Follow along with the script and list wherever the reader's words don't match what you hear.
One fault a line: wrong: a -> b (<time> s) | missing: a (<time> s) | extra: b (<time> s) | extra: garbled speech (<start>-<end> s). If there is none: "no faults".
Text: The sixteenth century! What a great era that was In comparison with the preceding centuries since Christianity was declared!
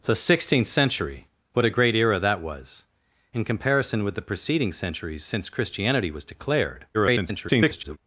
extra: garbled speech (6.9-8.0 s)